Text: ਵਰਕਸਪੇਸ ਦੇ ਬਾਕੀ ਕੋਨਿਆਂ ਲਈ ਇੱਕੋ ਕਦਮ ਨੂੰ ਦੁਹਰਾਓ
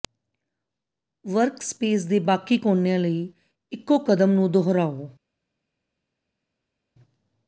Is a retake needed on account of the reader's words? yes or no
no